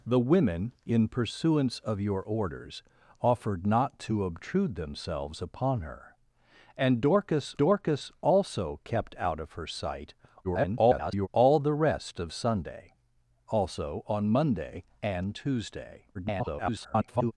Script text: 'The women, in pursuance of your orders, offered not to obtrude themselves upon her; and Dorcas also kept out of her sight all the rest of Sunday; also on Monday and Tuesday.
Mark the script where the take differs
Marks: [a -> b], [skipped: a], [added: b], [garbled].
'The women, in pursuance of your orders, offered not to obtrude themselves upon her; and Dorcas [added: Dorcas] also kept out of her sight [garbled] all the rest of Sunday; also on Monday and Tuesday. [garbled]